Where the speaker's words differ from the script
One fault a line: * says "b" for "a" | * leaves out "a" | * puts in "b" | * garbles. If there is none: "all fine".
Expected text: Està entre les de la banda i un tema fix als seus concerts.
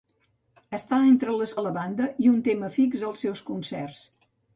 all fine